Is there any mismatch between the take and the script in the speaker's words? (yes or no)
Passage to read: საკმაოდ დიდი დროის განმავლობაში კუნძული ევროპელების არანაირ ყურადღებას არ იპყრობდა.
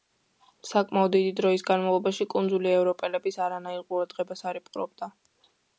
no